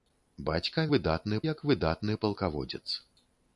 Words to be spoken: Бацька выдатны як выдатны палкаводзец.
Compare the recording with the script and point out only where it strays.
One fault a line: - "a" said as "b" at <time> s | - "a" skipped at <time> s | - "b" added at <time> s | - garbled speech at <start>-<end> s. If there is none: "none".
none